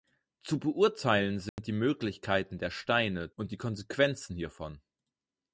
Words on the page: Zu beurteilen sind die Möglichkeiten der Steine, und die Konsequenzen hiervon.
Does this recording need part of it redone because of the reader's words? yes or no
no